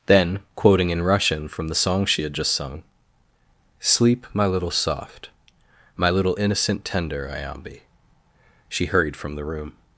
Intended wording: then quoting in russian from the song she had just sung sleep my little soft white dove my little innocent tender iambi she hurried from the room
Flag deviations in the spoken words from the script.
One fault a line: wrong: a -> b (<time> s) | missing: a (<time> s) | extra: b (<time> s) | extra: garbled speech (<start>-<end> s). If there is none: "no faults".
missing: white dove (5.3 s)